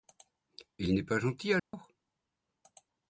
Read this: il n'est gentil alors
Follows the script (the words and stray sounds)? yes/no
no